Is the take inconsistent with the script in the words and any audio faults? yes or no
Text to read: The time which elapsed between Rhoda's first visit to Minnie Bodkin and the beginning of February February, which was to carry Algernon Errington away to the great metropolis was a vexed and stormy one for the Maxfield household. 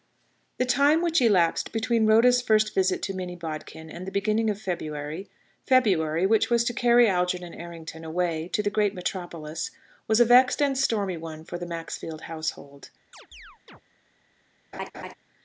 yes